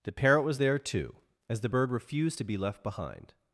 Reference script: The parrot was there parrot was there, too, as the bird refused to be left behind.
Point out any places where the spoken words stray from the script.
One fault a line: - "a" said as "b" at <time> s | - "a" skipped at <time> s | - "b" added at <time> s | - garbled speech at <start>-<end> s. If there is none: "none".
- "parrot was there" skipped at 0.8 s